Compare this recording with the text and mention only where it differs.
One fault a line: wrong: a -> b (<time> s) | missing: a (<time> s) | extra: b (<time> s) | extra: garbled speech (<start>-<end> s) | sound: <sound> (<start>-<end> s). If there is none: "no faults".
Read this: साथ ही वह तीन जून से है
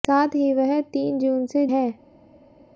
no faults